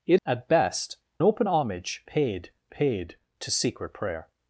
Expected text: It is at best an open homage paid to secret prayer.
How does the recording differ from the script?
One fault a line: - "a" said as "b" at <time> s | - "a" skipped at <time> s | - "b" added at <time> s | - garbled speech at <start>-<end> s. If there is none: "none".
- "is" skipped at 0.2 s
- "an" skipped at 1.0 s
- "paid" added at 2.7 s